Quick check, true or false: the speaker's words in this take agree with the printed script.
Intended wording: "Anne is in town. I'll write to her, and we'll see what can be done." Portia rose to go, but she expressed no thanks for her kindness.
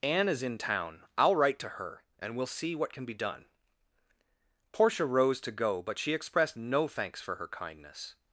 true